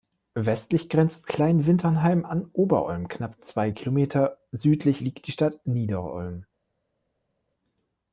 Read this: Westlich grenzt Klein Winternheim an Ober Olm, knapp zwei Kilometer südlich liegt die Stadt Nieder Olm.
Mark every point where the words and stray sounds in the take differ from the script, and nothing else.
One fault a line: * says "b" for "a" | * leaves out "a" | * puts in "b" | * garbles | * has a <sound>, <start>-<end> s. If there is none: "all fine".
all fine